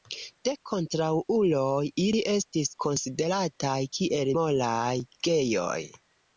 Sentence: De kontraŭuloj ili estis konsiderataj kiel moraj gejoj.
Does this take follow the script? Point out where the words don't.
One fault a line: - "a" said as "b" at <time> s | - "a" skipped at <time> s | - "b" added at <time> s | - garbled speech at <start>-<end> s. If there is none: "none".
none